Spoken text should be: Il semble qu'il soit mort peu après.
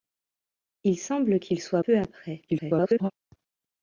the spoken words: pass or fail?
fail